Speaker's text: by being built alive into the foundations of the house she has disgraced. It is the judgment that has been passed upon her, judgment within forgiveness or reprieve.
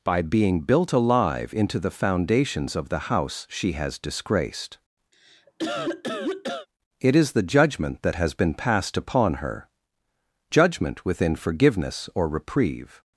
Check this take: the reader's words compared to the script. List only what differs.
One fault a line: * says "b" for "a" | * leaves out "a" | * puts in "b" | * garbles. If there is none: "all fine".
all fine